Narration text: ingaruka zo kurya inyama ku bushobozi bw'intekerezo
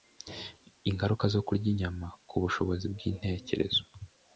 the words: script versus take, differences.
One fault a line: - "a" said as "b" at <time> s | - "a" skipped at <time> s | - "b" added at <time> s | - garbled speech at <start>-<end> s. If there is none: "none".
none